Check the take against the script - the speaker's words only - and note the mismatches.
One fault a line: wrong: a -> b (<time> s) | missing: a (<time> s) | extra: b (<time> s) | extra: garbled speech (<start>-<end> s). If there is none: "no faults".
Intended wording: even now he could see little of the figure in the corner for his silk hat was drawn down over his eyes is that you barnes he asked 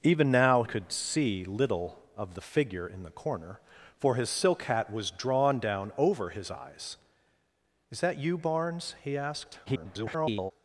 missing: he (0.6 s)
extra: garbled speech (9.7-10.5 s)